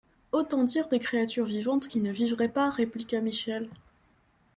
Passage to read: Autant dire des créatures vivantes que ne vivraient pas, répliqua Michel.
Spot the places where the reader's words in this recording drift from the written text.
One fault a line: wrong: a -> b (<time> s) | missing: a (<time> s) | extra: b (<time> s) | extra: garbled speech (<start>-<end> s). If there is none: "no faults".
wrong: que -> qui (1.8 s)